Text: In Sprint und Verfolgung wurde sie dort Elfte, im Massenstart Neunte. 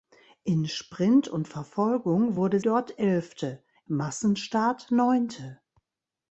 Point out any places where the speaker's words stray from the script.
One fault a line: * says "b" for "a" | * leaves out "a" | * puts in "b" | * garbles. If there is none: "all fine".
* leaves out "sie"
* leaves out "im"